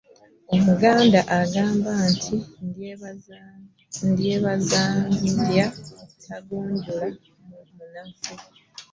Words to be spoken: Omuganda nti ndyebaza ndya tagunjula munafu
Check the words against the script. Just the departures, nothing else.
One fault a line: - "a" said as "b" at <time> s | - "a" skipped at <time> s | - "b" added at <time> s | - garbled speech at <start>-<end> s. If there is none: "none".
- "agamba" added at 1.4 s